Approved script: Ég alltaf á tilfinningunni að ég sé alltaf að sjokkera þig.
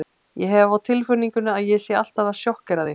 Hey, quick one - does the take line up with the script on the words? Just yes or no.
no